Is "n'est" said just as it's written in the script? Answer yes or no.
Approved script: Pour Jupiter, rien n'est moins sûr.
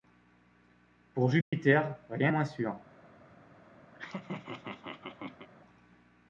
no